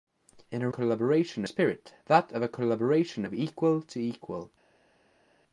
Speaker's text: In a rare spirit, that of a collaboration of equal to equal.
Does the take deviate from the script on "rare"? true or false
true